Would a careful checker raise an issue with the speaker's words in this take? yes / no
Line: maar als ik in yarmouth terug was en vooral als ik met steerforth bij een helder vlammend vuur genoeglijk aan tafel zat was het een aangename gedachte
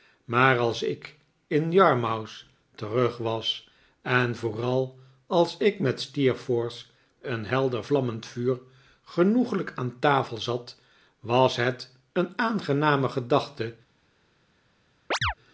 yes